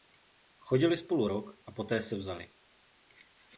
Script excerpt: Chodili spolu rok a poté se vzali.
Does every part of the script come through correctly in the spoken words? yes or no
yes